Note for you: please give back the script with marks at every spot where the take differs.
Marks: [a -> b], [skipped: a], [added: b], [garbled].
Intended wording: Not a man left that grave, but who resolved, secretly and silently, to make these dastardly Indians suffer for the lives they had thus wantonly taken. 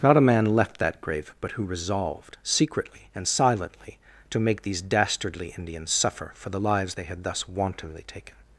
Not a man left that grave, but who resolved, secretly and silently, to make these dastardly Indians suffer for the lives they had thus wantonly taken.